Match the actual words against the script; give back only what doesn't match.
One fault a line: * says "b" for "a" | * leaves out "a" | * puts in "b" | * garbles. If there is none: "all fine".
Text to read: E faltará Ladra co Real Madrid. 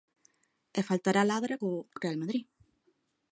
all fine